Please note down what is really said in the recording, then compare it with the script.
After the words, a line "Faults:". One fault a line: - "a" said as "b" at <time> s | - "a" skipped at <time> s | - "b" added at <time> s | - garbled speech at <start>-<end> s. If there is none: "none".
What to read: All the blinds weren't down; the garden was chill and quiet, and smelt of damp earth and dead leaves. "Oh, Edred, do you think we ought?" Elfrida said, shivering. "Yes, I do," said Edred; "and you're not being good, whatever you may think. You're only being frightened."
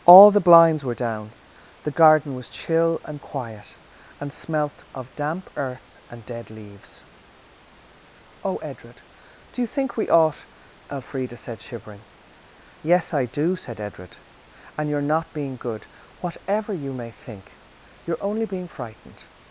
All the blinds were down; the garden was chill and quiet, and smelt of damp earth and dead leaves. "Oh, Edred, do you think we ought?" Elfrida said, shivering. "Yes, I do," said Edred; "and you're not being good, whatever you may think. You're only being frightened."
Faults:
- "weren't" said as "were" at 0.8 s